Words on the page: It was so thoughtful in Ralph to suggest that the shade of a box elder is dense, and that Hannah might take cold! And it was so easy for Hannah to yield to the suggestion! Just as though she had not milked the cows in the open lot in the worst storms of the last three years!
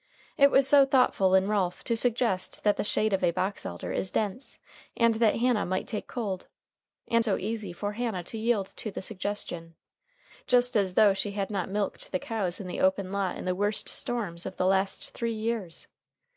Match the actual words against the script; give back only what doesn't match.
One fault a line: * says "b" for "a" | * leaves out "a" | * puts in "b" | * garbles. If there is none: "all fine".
* leaves out "it was"